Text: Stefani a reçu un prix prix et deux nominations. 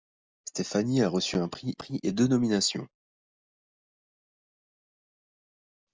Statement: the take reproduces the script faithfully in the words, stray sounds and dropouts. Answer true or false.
true